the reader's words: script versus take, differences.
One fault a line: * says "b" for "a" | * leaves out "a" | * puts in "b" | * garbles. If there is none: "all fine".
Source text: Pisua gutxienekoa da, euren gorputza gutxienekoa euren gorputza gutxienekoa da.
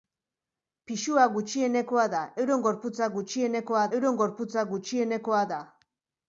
all fine